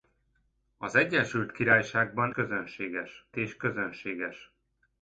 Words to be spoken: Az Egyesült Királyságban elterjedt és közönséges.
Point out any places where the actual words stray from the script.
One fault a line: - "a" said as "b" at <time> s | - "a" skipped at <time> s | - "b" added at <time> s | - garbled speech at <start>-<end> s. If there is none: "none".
- "elterjedt" said as "közönséges" at 2.3 s